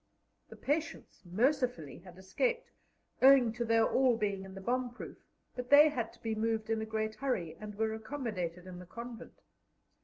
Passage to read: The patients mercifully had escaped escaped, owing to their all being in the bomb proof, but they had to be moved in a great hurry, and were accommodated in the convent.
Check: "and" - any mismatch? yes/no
no